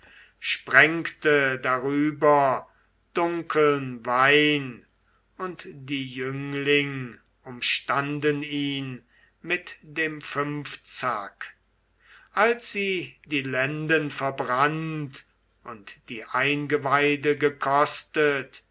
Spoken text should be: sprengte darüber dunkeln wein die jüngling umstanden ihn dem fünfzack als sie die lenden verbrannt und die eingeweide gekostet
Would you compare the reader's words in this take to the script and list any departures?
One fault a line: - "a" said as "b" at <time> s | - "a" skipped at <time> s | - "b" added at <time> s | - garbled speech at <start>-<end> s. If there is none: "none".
- "und" added at 5.4 s
- "mit" added at 9.4 s